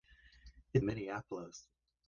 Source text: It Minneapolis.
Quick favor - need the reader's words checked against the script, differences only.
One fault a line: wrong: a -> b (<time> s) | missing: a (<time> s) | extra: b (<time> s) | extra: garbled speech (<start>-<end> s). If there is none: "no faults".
no faults